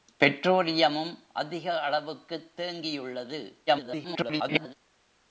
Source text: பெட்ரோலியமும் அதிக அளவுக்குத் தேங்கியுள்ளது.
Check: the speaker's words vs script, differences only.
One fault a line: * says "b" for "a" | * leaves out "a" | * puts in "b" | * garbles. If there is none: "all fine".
* garbles